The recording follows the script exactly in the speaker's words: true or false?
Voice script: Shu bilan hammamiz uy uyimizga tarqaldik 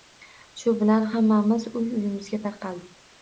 true